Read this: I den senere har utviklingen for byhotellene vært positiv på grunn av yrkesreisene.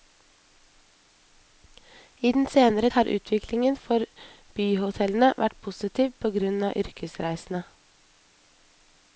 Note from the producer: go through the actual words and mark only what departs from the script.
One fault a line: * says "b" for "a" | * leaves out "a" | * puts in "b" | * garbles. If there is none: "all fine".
all fine